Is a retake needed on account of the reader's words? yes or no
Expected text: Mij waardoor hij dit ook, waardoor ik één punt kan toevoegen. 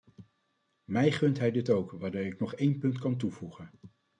yes